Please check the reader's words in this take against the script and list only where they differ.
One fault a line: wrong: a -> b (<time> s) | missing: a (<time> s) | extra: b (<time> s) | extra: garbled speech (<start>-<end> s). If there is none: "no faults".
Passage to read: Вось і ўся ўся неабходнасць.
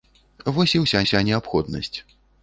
no faults